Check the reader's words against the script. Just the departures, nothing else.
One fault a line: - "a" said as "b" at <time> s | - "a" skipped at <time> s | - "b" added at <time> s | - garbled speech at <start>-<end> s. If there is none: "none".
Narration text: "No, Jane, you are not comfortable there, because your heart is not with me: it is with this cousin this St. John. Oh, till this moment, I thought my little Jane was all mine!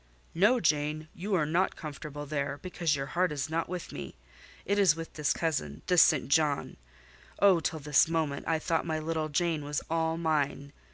none